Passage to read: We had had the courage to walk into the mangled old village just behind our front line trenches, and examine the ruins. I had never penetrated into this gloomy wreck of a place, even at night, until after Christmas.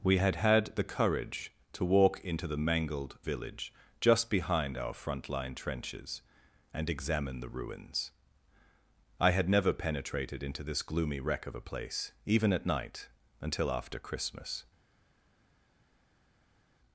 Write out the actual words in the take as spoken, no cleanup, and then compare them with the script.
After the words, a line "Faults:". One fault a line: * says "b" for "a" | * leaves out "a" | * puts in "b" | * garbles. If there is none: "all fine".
We had had the courage to walk into the mangled village just behind our front line trenches, and examine the ruins. I had never penetrated into this gloomy wreck of a place, even at night, until after Christmas.
Faults:
* leaves out "old"